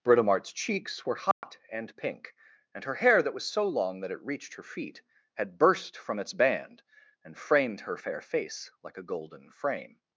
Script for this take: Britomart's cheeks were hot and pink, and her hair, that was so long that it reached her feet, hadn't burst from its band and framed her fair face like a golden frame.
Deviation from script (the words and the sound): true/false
true